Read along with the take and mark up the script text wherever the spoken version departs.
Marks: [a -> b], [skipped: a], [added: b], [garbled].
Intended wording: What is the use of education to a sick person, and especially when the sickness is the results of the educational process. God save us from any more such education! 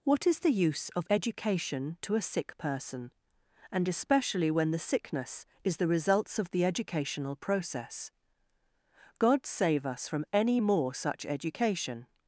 What is the use of education to a sick person, and especially when the sickness is the results of the educational process. God save us from any more such education!